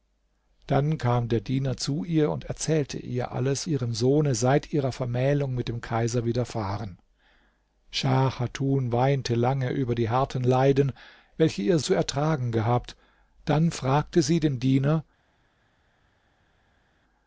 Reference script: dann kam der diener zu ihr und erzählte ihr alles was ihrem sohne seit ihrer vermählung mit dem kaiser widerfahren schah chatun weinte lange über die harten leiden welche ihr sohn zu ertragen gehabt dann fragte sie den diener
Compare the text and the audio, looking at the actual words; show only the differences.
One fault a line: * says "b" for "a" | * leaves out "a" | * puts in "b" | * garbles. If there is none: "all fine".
* leaves out "was"
* leaves out "sohn"